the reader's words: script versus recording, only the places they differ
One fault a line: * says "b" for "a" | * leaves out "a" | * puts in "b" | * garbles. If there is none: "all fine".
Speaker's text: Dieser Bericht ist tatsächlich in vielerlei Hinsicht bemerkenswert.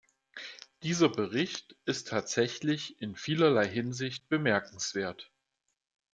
all fine